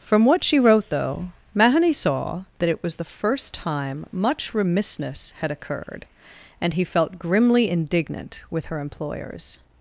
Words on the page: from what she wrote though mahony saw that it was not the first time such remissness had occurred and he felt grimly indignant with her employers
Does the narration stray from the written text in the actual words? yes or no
yes